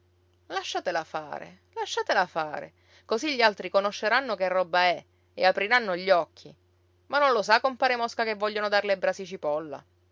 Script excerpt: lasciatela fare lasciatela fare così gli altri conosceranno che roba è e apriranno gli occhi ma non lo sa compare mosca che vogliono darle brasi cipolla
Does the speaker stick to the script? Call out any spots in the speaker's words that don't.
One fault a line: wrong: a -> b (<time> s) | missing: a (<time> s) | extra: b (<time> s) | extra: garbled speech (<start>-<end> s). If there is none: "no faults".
no faults